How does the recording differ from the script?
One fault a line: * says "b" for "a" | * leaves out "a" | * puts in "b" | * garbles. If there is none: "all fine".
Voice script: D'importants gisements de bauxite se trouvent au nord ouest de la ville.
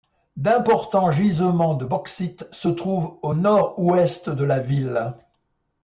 all fine